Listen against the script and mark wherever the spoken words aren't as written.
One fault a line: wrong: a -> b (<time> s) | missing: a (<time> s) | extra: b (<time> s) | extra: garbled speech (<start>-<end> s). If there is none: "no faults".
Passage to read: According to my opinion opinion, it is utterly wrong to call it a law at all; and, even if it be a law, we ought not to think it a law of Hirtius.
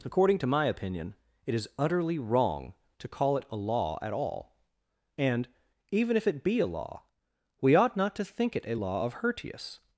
missing: opinion (1.1 s)